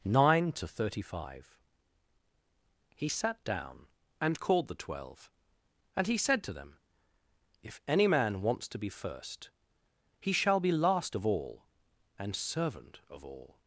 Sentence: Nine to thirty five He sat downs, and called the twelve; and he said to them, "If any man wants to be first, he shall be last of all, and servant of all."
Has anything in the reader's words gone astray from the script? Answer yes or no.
yes